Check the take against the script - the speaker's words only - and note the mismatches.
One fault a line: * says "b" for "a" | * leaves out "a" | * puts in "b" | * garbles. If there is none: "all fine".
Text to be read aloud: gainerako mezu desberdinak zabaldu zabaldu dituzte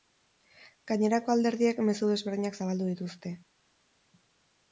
* puts in "alderdiek"
* leaves out "zabaldu"